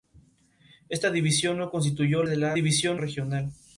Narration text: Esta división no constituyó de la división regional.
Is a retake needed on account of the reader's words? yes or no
no